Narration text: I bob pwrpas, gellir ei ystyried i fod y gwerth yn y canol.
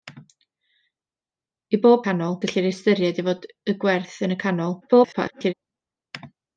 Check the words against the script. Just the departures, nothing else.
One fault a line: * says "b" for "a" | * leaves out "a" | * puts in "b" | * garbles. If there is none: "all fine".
* says "canol" for "pwrpas"
* garbles